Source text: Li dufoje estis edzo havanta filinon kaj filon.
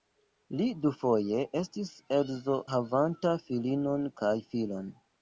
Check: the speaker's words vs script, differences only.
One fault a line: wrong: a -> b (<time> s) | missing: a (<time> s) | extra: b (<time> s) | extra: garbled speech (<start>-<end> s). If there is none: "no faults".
no faults